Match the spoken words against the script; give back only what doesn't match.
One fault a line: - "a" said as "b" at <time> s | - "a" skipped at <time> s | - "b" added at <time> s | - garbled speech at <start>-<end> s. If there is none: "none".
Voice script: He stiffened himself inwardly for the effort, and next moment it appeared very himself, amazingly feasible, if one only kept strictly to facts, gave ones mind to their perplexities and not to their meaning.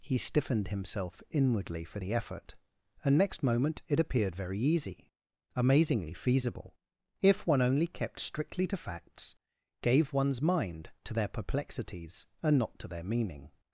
- "himself" said as "easy" at 4.6 s